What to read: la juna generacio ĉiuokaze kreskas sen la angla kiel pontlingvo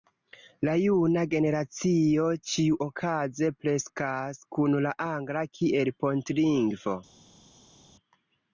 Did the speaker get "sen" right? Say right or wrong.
wrong